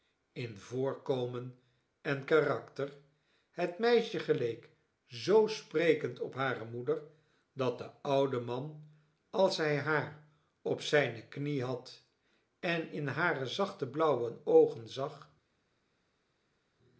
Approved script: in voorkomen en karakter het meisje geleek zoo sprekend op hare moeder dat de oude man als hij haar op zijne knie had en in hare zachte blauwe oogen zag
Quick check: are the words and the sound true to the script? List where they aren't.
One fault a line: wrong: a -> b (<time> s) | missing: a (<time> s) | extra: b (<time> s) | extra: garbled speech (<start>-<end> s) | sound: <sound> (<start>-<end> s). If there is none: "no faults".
no faults